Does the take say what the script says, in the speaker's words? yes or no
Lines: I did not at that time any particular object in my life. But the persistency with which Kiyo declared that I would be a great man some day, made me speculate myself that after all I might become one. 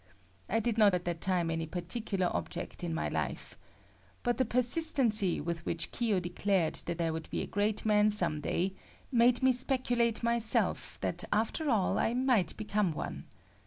yes